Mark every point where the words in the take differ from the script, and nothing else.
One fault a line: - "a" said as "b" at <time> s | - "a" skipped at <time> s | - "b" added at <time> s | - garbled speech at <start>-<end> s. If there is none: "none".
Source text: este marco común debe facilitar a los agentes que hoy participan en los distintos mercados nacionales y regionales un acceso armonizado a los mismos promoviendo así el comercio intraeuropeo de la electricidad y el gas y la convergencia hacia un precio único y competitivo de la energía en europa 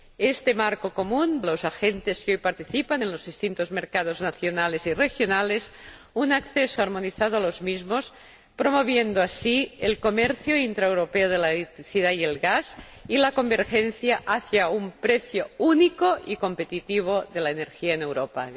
- "debe facilitar a" skipped at 1.4 s